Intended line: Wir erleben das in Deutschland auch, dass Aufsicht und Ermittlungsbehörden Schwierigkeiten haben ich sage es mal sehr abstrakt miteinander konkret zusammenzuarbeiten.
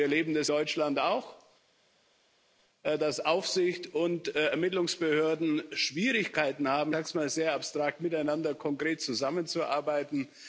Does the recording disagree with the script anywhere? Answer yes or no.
yes